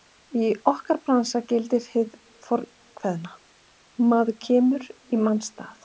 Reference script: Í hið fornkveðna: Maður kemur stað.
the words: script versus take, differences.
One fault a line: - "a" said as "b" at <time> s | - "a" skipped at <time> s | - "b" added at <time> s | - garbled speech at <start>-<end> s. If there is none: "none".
- "okkar bransa gildir" added at 0.7 s
- "í manns" added at 4.9 s